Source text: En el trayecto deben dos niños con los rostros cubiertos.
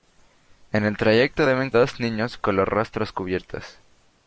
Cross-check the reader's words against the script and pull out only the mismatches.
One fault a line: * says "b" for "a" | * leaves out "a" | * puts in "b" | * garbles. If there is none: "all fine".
all fine